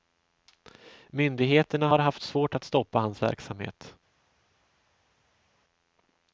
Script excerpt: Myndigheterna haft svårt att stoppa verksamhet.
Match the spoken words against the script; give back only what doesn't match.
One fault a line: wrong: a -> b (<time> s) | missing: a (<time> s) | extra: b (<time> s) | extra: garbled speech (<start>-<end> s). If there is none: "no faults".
extra: har (1.9 s)
extra: hans (3.0 s)